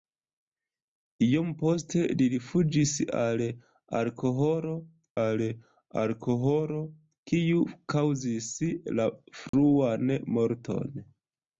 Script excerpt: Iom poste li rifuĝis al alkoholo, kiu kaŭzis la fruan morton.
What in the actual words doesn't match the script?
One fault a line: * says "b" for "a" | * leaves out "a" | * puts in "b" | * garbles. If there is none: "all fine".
* puts in "al alkoholo"